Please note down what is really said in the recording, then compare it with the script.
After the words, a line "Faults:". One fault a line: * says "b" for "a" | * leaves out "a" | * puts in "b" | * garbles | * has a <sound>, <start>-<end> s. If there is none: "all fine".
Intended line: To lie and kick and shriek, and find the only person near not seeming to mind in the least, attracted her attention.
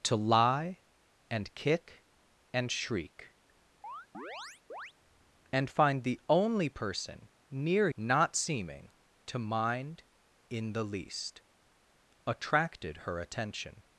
To lie and kick and shriek, and find the only person near not seeming to mind in the least, attracted her attention.
Faults:
* has a chirp, 3.8-4.9 s